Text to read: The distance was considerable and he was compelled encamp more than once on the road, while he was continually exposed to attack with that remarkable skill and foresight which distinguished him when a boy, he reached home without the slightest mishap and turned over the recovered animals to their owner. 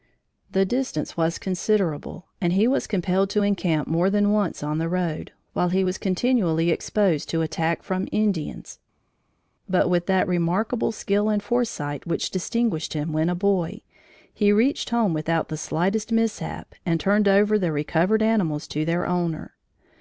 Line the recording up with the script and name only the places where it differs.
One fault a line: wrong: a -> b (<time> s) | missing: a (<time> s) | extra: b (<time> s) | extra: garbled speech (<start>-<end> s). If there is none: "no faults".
extra: to (3.3 s)
extra: from Indians but (7.8 s)